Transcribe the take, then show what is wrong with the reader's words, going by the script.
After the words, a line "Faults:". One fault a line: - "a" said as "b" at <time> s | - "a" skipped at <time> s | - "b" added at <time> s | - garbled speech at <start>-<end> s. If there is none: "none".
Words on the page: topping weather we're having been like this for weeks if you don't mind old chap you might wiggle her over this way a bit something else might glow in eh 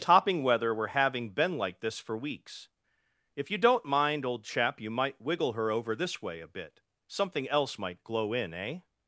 topping weather we're having been like this for weeks if you don't mind old chap you might wiggle her over this way a bit something else might glow in eh
Faults:
none